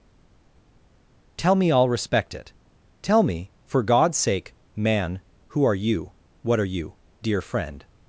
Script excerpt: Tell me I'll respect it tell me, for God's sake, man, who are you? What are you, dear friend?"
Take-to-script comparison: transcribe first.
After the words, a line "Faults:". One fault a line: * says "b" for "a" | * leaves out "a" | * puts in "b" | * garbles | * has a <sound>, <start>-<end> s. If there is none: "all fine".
Tell me I'll respect it tell me, for God's sake, man, who are you? What are you, dear friend?"
Faults:
all fine